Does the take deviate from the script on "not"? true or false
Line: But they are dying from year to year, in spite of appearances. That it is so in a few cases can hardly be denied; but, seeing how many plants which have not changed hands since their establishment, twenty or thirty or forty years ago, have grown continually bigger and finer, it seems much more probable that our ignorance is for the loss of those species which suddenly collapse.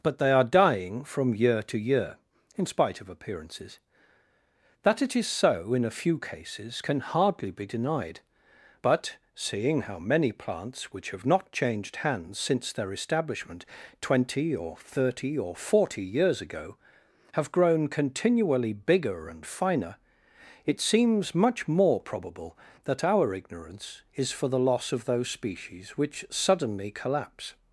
false